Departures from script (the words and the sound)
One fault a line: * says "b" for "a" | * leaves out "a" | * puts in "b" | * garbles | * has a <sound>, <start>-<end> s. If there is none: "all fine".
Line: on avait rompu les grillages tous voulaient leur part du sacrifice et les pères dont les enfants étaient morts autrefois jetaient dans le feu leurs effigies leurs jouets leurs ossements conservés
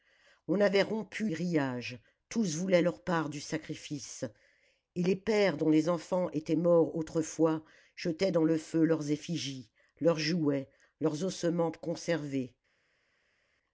* leaves out "les"